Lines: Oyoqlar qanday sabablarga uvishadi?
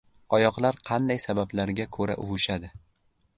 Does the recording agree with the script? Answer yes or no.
no